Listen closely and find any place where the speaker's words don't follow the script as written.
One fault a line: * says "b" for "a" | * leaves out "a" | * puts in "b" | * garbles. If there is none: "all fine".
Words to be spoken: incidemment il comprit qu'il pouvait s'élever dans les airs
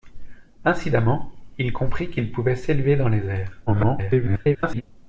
* garbles